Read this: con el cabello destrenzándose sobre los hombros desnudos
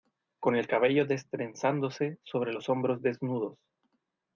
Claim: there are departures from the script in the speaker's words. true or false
false